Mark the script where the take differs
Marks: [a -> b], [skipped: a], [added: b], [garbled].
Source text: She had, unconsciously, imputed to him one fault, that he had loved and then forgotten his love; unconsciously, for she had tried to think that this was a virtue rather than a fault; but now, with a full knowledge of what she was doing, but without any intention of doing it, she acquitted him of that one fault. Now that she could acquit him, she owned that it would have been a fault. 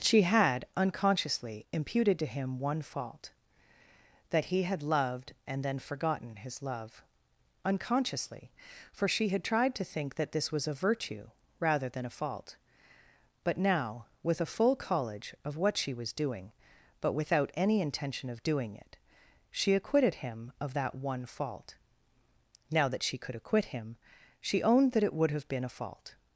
She had, unconsciously, imputed to him one fault, that he had loved and then forgotten his love; unconsciously, for she had tried to think that this was a virtue rather than a fault; but now, with a full [knowledge -> college] of what she was doing, but without any intention of doing it, she acquitted him of that one fault. Now that she could acquit him, she owned that it would have been a fault.